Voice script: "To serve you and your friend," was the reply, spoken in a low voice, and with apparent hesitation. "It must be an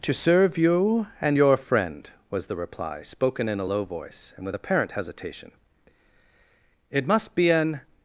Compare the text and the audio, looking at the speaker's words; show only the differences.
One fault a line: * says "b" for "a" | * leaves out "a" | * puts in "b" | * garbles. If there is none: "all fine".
all fine